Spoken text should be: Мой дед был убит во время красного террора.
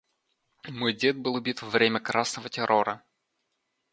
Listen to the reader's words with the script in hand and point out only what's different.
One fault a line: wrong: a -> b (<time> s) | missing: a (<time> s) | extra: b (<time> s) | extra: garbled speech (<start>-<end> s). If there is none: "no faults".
no faults